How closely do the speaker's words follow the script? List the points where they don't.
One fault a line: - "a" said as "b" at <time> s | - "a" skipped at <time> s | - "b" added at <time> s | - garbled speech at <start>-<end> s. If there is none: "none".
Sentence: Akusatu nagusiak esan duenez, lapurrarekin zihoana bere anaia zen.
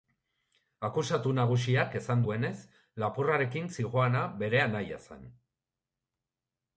none